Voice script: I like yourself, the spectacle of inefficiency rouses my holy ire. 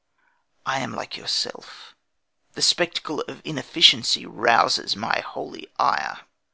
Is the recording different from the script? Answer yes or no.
yes